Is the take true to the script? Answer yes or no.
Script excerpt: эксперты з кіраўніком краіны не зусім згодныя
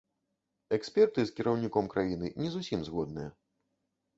yes